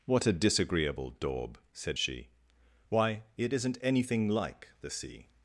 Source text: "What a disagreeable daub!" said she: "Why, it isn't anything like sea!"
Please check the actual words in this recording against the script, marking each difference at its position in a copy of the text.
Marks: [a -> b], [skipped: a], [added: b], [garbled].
"What a disagreeable daub!" said she: "Why, it isn't anything like [added: the] sea!"